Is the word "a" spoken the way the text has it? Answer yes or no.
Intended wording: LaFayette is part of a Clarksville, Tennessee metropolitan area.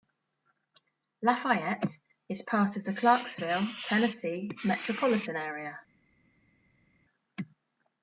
no